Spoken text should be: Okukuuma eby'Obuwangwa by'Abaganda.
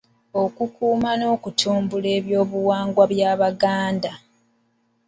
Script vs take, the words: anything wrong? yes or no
yes